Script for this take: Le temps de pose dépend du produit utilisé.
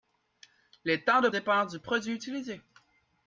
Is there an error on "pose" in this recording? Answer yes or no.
yes